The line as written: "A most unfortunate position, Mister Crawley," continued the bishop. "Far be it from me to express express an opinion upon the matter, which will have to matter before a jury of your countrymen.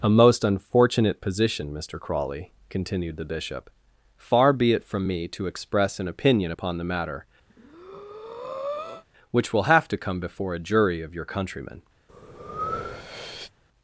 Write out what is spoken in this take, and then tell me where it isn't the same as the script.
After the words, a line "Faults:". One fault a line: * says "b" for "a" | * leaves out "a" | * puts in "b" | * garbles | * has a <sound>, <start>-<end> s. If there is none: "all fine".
"A most unfortunate position, Mister Crawley," continued the bishop. "Far be it from me to express an opinion upon the matter, which will have to come before a jury of your countrymen.
Faults:
* leaves out "express"
* has a breath, 7.5-9.0 s
* says "come" for "matter"
* has a breath, 12.1-13.5 s